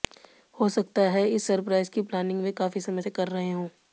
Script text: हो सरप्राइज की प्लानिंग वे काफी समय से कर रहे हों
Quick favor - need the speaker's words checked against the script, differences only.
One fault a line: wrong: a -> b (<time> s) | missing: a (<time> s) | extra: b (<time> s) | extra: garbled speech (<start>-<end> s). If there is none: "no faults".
extra: सकता है इस (0.7 s)